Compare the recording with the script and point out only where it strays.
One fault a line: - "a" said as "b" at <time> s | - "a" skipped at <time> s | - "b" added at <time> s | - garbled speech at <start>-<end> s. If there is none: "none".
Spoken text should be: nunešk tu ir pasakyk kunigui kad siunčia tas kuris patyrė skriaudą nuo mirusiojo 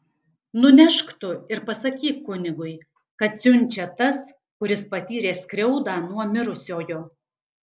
none